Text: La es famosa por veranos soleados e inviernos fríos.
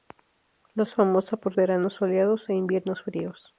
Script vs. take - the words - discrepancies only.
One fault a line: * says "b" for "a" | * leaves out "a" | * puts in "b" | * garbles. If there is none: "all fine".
all fine